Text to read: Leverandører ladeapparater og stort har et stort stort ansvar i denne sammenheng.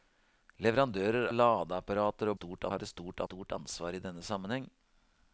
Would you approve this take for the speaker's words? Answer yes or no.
yes